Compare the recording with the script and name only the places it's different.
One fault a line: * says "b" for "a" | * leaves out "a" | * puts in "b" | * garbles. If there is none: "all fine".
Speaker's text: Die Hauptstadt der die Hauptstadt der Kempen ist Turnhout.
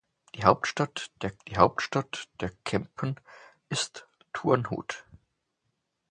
all fine